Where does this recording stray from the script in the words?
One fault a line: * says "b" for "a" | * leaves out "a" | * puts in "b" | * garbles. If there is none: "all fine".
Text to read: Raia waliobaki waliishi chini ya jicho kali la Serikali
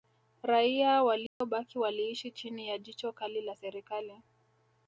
all fine